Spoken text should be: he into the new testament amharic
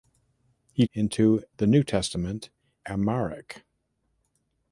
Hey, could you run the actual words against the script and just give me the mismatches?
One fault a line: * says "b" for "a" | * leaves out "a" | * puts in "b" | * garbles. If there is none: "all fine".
all fine